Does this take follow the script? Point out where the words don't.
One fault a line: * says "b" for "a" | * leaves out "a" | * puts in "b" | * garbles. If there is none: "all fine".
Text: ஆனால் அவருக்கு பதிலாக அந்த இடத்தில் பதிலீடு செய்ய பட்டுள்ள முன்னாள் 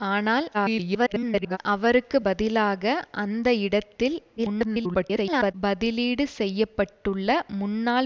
* garbles
* garbles